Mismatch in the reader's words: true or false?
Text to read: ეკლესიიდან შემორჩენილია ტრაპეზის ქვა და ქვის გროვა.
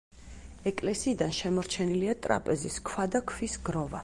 false